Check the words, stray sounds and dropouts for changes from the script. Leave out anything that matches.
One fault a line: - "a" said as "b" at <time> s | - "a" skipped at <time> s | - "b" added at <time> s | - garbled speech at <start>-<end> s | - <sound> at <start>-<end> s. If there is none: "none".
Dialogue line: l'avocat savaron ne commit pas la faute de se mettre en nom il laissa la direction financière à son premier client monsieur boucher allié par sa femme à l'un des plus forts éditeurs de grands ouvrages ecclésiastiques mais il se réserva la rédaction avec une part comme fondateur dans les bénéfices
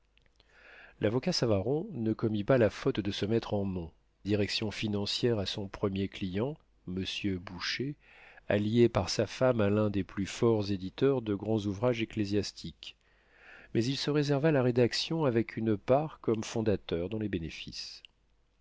- "il laissa la" skipped at 3.9 s